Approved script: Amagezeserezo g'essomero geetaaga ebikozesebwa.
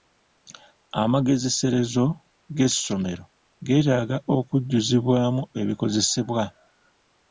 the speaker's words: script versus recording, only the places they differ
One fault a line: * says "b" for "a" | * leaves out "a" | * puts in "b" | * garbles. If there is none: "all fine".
* puts in "okujjuzibwamu"